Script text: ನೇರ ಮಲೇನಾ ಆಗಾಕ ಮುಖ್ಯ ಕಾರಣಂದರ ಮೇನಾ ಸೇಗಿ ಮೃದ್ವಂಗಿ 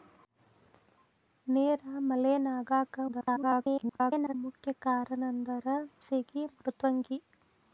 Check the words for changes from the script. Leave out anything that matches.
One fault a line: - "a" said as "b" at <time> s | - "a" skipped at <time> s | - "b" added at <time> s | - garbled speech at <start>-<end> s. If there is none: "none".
- garbled speech at 3.1-4.3 s
- "ಮೇನಾ" skipped at 5.7 s